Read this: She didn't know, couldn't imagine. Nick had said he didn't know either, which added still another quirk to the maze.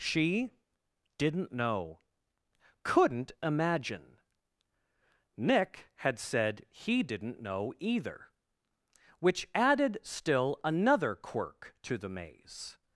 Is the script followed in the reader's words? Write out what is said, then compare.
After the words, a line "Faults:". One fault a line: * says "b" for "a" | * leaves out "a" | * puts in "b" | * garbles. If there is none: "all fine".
She didn't know, couldn't imagine. Nick had said he didn't know either, which added still another quirk to the maze.
Faults:
all fine